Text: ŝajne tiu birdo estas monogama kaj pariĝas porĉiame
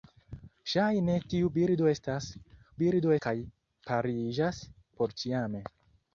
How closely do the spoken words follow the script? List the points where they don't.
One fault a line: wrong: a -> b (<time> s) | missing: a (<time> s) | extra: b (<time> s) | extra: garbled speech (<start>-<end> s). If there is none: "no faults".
wrong: monogama -> birdo (2.8 s)